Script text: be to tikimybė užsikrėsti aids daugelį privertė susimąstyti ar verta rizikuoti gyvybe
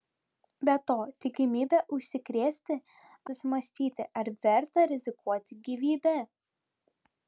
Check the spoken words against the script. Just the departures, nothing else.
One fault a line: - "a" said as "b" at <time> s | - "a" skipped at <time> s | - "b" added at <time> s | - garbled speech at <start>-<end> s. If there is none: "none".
- "aids daugelį privertė" skipped at 2.8 s